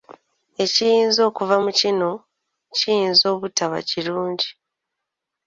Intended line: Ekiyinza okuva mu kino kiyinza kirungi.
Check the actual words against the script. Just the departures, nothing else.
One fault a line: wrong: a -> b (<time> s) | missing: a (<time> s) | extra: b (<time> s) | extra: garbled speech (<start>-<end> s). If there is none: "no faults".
extra: obutaba (3.3 s)